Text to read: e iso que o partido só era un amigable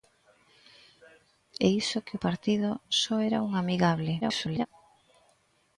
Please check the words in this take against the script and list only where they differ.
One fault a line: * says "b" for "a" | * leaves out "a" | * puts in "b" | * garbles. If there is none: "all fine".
* garbles